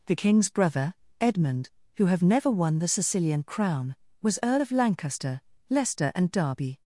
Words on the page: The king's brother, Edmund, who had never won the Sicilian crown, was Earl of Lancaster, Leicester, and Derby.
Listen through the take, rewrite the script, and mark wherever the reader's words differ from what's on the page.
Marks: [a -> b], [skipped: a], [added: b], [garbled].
The king's brother, Edmund, who [had -> have] never won the Sicilian crown, was Earl of Lancaster, Leicester, and Derby.